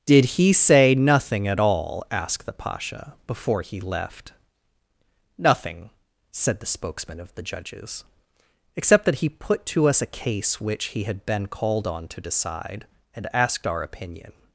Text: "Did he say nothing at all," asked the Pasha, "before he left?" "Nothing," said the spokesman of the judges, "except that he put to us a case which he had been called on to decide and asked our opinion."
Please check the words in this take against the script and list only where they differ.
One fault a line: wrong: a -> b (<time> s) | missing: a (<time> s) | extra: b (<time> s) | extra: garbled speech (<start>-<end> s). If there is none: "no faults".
no faults